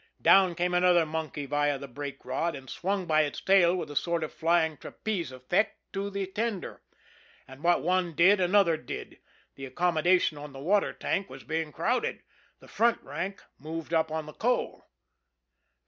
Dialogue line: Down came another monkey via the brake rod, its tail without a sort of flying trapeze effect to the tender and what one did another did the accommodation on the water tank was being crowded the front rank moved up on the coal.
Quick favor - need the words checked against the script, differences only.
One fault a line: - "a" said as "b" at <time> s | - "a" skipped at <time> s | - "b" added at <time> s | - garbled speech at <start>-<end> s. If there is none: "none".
- "and swung by" added at 2.5 s
- "without" said as "with" at 3.8 s